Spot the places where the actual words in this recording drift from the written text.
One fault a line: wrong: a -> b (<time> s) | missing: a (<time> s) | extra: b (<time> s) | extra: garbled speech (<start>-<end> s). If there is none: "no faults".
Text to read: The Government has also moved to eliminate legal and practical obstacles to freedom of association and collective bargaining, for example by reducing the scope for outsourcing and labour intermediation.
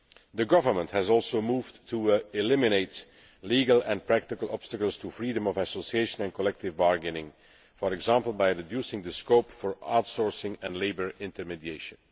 no faults